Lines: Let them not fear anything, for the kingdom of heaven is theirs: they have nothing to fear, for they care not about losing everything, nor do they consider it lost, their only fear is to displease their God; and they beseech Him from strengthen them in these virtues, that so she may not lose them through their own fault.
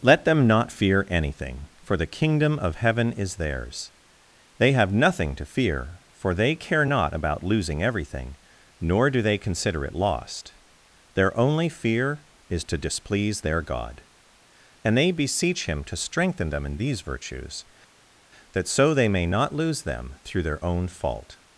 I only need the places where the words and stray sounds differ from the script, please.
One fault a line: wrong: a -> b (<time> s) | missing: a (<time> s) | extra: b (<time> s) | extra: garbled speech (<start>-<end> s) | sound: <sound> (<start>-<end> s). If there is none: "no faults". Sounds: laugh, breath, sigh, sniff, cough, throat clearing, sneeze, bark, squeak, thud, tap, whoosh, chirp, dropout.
wrong: from -> to (15.8 s)
wrong: she -> they (18.9 s)